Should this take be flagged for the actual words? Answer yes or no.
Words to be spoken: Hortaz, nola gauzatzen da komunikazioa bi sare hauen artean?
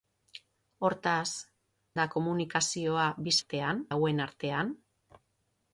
yes